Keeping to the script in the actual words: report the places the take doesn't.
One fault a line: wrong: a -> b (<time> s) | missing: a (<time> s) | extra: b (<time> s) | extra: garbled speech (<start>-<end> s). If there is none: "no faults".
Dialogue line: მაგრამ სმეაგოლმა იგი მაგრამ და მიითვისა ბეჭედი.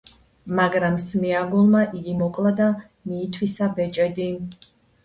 wrong: მაგრამ -> მოკლა (2.2 s)